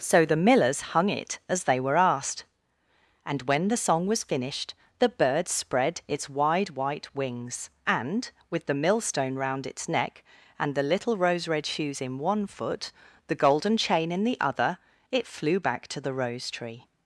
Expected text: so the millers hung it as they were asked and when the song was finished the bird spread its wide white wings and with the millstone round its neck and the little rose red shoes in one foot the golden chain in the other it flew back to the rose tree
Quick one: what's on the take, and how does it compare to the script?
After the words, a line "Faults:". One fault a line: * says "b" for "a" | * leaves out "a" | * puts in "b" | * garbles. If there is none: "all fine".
so the millers hung it as they were asked and when the song was finished the bird spread its wide white wings and with the millstone round its neck and the little rose red shoes in one foot the golden chain in the other it flew back to the rose tree
Faults:
all fine